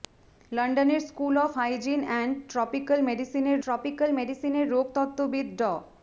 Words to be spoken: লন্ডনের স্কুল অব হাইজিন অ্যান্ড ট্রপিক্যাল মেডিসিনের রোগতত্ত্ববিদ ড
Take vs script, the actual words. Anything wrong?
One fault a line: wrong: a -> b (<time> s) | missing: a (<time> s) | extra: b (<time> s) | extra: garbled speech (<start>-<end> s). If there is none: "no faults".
extra: ট্রপিক্যাল মেডিসিনের (3.6 s)